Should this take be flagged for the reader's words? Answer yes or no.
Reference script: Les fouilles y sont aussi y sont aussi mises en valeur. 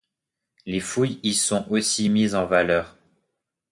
yes